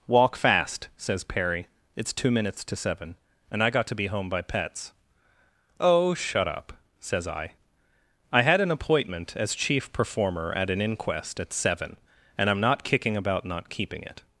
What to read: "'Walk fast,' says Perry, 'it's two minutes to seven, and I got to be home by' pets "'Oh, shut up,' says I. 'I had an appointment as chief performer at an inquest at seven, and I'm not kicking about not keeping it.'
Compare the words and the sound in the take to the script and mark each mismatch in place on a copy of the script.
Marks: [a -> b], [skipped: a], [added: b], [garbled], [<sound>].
"'Walk fast,' says Perry, 'it's two minutes to seven, and I got to be home by' pets "'Oh, shut up,' says I. 'I had an appointment as chief performer at an inquest at seven, and I'm not kicking about not keeping it.'